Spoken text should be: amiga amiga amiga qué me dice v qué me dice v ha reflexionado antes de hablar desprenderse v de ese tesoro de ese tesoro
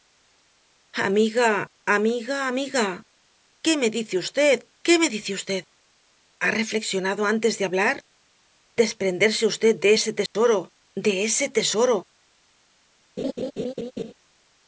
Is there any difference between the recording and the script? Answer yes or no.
no